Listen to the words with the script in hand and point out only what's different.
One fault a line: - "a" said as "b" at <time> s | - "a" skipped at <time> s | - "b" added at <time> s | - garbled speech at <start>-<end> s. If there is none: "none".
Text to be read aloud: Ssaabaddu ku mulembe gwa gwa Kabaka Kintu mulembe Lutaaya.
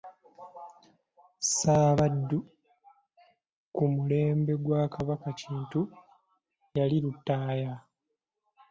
- "gwa" skipped at 4.8 s
- "mulembe" said as "yali" at 6.8 s